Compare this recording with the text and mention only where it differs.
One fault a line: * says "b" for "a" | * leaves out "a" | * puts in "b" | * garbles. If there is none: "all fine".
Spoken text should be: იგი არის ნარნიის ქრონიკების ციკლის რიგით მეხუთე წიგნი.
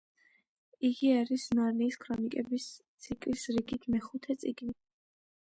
all fine